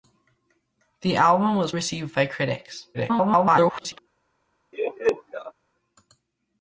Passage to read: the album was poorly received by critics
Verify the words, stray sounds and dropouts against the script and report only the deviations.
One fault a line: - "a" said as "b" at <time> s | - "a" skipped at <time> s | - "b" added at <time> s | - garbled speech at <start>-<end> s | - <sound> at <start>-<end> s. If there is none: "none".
- "poorly" skipped at 1.7 s
- garbled speech at 2.9-4.0 s
- laugh at 4.7-5.5 s